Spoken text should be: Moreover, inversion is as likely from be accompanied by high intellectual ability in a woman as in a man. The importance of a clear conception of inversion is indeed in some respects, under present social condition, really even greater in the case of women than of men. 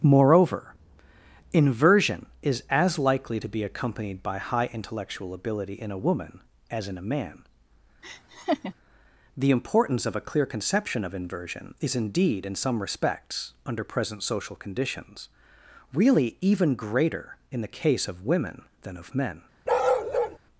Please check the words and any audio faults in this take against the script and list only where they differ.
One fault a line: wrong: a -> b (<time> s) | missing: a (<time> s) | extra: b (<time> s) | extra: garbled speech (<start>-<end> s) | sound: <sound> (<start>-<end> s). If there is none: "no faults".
wrong: from -> to (3.4 s)
sound: laugh (8.0-8.7 s)
wrong: condition -> conditions (14.6 s)
sound: bark (19.7-20.4 s)